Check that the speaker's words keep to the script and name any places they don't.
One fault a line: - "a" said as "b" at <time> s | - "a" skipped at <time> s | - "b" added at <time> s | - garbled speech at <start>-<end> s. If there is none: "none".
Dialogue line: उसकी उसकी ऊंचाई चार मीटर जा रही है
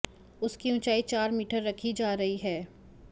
- "उसकी" skipped at 0.7 s
- "रखी" added at 1.6 s